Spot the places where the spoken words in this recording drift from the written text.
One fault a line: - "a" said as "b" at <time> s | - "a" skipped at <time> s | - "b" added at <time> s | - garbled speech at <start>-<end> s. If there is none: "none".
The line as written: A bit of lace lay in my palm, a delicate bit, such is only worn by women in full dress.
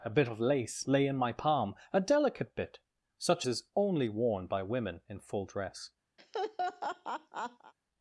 none